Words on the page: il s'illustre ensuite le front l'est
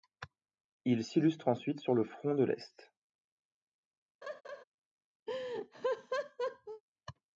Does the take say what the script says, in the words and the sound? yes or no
no